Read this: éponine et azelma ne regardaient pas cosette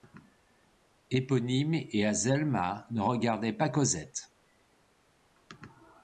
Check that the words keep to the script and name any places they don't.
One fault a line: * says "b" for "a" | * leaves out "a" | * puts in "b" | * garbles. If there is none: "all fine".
all fine